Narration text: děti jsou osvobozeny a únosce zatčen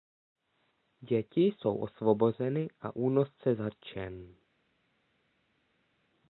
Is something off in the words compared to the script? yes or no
no